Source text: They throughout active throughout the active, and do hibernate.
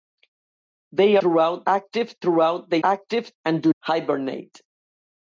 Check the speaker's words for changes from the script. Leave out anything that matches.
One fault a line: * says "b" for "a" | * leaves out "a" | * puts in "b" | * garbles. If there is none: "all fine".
all fine